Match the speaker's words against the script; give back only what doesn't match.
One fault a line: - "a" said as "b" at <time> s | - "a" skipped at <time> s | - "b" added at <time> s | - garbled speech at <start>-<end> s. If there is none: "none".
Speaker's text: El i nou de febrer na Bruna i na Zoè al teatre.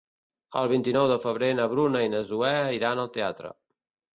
- "vint" added at 0.7 s
- "iran" added at 2.8 s